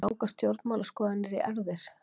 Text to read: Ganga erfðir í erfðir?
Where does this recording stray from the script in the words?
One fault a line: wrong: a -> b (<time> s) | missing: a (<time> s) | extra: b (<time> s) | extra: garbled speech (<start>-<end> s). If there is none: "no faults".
wrong: erfðir -> stjórnmálaskoðanir (0.3 s)